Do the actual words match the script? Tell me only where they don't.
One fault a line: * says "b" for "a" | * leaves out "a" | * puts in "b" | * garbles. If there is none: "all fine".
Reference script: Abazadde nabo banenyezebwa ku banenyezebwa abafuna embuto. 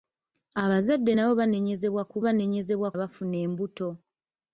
all fine